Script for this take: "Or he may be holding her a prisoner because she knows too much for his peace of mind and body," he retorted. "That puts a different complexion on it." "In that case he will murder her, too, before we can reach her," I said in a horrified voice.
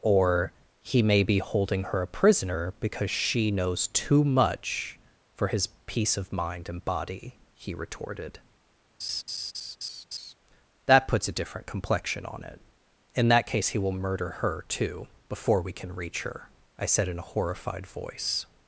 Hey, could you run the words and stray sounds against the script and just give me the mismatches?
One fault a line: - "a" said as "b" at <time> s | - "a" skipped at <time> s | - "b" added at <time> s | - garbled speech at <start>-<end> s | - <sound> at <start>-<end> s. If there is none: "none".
- laugh at 9.0-10.3 s